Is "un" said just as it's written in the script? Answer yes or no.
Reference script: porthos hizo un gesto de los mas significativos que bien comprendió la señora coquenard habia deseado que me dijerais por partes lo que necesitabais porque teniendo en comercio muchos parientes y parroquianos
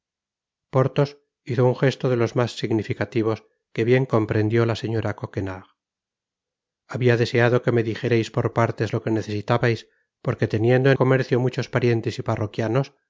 yes